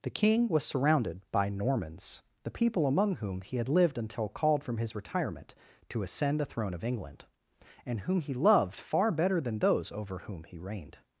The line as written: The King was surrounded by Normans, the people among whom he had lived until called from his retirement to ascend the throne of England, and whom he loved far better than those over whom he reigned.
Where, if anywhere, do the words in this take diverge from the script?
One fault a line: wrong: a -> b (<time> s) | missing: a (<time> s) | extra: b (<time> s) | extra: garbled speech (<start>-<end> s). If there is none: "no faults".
no faults